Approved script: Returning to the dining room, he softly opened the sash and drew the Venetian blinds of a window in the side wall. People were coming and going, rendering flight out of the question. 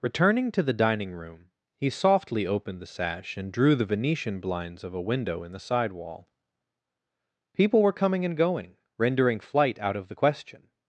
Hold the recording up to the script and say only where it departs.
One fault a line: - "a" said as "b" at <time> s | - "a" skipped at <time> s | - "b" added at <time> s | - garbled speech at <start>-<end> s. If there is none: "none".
none